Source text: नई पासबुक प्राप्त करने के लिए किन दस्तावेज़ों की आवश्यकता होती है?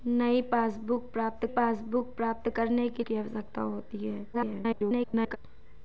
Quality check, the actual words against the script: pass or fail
fail